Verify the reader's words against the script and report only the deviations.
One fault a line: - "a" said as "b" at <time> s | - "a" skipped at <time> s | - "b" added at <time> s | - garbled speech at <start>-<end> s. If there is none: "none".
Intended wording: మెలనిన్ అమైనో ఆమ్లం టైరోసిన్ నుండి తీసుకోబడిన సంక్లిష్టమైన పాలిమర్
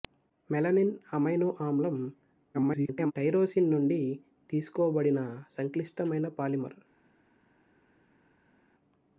- garbled speech at 2.5-3.1 s